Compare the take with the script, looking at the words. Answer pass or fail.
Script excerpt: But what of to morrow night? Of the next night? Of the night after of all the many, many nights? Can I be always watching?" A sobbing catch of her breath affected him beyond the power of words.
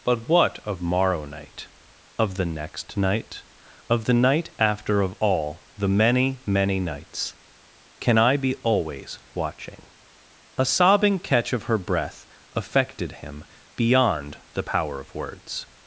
fail